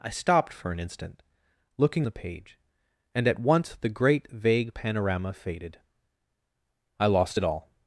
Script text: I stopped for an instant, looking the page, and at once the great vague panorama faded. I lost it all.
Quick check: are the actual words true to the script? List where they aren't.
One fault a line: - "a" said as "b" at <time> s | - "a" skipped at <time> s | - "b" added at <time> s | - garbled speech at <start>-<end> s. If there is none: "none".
none